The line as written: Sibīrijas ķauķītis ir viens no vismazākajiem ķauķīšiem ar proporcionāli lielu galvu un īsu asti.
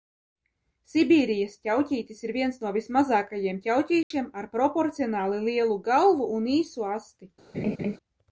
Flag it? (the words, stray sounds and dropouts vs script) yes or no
yes